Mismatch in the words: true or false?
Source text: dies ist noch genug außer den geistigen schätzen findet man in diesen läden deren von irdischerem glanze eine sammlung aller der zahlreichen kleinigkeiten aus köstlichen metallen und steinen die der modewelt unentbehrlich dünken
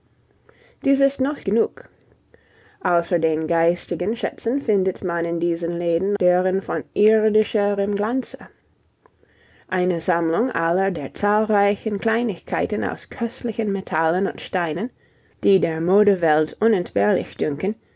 false